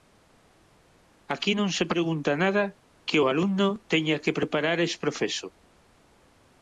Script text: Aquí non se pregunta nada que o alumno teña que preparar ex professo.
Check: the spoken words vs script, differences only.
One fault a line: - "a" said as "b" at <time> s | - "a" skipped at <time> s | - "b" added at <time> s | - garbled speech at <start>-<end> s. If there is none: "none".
none